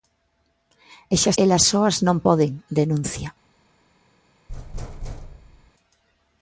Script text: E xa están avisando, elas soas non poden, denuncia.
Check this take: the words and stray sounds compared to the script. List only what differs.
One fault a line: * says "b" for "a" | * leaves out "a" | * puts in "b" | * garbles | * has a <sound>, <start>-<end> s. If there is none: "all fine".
* leaves out "están avisando"
* has a thud, 4.5-5.7 s